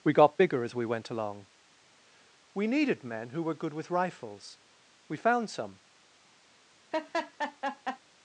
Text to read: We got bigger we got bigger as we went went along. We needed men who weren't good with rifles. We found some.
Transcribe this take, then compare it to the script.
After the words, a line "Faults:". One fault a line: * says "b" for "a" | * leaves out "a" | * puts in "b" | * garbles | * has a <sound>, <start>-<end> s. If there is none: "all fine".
We got bigger as we went along. We needed men who were good with rifles. We found some.
Faults:
* leaves out "we got bigger"
* leaves out "went"
* says "were" for "weren't"
* has a laugh, 6.9-8.0 s